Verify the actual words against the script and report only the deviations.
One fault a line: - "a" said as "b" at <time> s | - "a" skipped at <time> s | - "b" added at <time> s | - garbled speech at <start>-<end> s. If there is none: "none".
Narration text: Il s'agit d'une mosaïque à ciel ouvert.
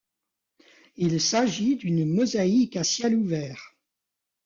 none